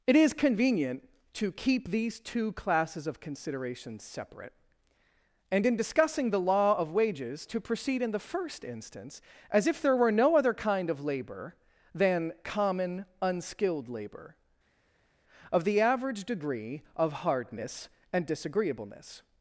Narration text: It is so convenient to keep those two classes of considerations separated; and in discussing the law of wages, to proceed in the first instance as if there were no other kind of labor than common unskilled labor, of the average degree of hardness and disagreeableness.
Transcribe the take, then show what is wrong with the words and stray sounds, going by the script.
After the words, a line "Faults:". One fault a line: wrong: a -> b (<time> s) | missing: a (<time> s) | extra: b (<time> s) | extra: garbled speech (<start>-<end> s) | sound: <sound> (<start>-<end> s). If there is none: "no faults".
It is convenient to keep these two classes of considerations separate; and in discussing the law of wages, to proceed in the first instance as if there were no other kind of labor than common unskilled labor, of the average degree of hardness and disagreeableness.
Faults:
missing: so (0.3 s)
wrong: those -> these (1.9 s)
wrong: separated -> separate (4.0 s)